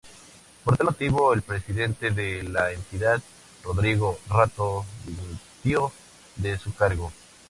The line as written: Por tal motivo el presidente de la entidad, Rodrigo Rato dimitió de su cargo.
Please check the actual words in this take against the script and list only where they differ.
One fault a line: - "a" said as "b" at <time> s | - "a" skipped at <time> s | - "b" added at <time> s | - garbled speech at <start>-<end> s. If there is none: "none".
none